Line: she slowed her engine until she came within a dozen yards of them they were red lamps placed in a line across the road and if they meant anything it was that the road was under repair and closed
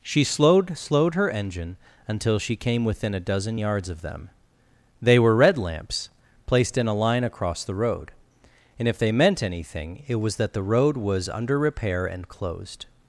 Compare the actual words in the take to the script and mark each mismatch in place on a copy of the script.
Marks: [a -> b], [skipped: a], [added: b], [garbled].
she slowed [added: slowed] her engine until she came within a dozen yards of them they were red lamps placed in a line across the road and if they meant anything it was that the road was under repair and closed